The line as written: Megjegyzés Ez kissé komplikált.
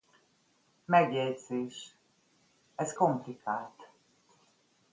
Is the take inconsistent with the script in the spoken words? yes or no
yes